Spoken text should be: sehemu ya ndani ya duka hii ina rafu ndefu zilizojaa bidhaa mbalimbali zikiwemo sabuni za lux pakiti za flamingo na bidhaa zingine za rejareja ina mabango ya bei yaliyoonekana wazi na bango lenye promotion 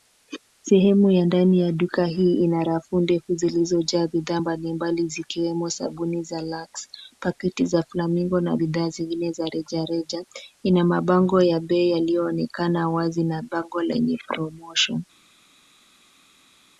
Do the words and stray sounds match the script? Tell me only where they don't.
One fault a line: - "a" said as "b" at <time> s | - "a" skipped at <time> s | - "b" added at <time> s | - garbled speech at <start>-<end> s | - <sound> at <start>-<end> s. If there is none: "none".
none